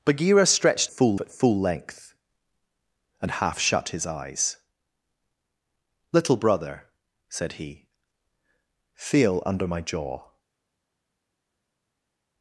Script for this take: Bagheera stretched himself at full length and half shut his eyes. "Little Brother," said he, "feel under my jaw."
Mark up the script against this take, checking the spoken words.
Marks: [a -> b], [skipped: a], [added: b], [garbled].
Bagheera stretched [himself -> full] at full length and half shut his eyes. "Little Brother," said he, "feel under my jaw."